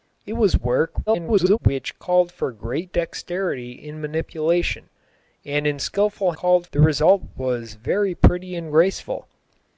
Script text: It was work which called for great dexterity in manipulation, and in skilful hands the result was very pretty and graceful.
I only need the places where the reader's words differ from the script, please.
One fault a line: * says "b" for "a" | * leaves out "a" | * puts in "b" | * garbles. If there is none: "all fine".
* garbles
* says "called" for "hands"